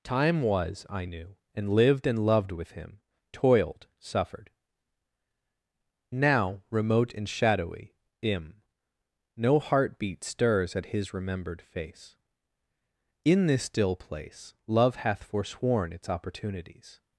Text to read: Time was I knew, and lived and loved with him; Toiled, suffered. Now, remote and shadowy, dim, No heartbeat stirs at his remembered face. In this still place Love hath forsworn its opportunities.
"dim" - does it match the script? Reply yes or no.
no